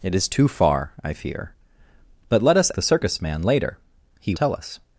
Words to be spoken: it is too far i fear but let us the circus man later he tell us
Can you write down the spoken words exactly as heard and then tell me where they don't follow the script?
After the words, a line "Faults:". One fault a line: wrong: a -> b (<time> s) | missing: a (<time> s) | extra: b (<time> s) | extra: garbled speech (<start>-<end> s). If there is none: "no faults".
it is too far i fear but let us the circus man later he tell us
Faults:
no faults